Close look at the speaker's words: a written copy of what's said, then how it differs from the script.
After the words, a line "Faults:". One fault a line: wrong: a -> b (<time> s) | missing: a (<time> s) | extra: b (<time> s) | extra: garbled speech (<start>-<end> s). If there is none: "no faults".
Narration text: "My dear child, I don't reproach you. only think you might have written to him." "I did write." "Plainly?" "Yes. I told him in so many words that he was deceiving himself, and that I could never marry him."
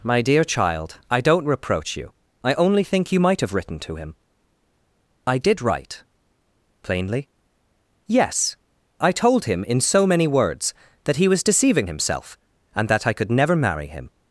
"My dear child, I don't reproach you. I only think you might have written to him." "I did write." "Plainly?" "Yes. I told him in so many words that he was deceiving himself, and that I could never marry him."
Faults:
extra: I (2.4 s)